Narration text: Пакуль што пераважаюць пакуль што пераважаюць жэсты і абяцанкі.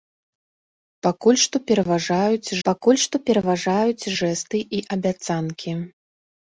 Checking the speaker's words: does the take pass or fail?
pass